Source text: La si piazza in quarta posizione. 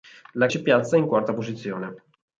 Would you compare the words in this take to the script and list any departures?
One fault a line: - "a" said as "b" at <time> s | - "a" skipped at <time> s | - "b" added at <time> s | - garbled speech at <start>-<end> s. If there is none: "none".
none